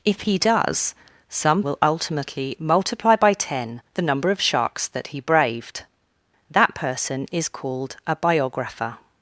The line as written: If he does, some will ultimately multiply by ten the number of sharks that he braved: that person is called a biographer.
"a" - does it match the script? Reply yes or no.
yes